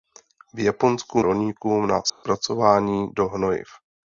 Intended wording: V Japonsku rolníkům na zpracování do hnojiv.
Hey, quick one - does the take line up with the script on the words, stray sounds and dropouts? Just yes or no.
no